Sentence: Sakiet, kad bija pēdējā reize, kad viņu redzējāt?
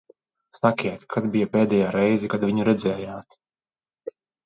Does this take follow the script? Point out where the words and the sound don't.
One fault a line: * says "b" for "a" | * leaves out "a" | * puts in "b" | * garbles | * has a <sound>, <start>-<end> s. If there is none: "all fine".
all fine